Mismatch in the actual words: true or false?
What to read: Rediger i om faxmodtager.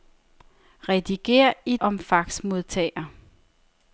false